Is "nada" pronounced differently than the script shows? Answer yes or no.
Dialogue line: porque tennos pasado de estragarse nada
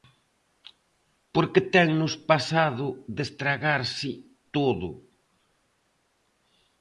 yes